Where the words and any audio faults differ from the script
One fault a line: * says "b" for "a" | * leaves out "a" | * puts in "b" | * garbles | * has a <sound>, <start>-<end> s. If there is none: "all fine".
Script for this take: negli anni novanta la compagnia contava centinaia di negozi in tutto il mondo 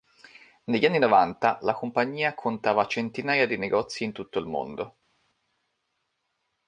all fine